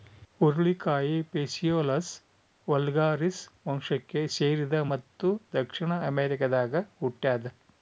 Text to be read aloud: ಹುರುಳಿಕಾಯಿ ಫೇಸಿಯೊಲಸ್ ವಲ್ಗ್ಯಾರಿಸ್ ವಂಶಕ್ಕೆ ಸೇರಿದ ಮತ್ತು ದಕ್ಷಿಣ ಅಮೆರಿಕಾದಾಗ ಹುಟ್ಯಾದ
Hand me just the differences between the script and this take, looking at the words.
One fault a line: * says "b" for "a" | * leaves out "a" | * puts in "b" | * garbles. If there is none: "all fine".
all fine